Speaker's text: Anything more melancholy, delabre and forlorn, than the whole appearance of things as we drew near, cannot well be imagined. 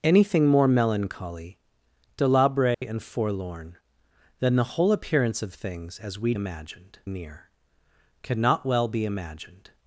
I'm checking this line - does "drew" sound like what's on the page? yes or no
no